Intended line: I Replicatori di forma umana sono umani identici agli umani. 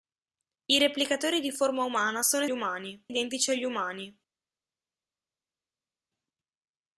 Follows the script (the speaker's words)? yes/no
yes